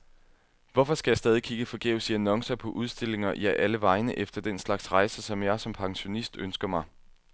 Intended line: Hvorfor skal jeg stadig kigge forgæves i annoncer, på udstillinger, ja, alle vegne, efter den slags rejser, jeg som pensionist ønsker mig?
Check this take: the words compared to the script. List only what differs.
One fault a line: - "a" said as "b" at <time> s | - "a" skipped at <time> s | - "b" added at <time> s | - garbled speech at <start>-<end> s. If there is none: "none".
- "som" added at 5.2 s